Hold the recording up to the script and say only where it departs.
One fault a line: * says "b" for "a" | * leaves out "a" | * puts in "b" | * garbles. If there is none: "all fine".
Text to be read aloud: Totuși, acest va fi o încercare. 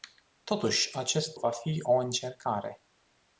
all fine